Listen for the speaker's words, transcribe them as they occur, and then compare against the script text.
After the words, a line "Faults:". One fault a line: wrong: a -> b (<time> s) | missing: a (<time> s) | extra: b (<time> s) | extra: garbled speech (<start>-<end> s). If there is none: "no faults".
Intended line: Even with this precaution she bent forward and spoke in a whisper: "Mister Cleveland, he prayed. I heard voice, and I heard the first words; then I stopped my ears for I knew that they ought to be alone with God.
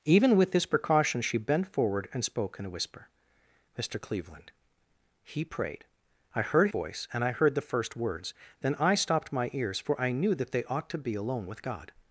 Even with this precaution she bent forward and spoke in a whisper: "Mister Cleveland, he prayed. I heard voice, and I heard the first words; then I stopped my ears for I knew that they ought to be alone with God.
Faults:
no faults